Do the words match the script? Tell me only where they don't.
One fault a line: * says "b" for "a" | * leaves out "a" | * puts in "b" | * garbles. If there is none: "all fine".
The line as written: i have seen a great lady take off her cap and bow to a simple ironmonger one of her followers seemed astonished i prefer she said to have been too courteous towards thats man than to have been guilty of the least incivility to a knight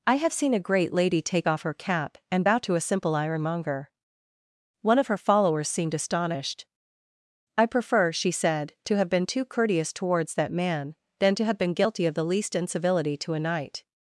* says "that" for "thats"